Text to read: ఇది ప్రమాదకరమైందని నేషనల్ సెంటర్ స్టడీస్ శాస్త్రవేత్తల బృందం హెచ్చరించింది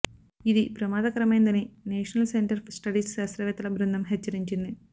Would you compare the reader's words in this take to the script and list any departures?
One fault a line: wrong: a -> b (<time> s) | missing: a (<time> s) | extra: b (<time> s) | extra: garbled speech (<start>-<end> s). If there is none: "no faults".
no faults